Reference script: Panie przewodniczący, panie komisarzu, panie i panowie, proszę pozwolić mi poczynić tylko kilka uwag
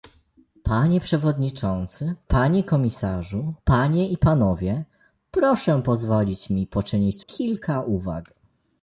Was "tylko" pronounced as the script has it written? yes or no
no